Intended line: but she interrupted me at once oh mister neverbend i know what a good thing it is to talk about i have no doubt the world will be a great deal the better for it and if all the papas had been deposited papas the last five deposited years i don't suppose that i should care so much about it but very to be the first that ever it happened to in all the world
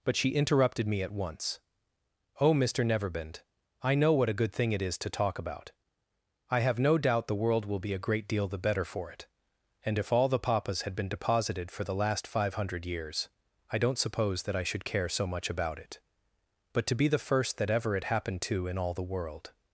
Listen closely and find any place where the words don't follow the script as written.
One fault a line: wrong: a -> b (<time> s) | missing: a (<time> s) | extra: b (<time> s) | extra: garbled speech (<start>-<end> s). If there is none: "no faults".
wrong: papas -> for (11.7 s)
wrong: deposited -> hundred (12.6 s)
missing: very (16.9 s)